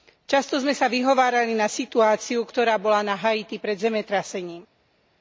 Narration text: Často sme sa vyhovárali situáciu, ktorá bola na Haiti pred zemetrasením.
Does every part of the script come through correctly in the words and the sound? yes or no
no